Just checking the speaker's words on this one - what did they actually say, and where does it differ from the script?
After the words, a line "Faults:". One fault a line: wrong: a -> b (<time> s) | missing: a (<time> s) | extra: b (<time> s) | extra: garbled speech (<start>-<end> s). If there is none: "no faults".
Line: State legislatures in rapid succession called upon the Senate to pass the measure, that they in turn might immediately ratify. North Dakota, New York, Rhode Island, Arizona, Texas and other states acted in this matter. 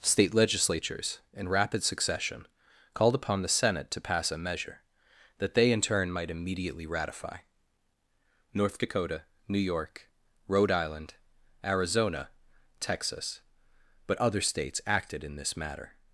State legislatures in rapid succession called upon the Senate to pass a measure, that they in turn might immediately ratify. North Dakota, New York, Rhode Island, Arizona, Texas but other states acted in this matter.
Faults:
wrong: the -> a (4.3 s)
wrong: and -> but (14.1 s)